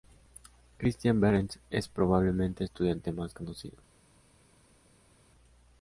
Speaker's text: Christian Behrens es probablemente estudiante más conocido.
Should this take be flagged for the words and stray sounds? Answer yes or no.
no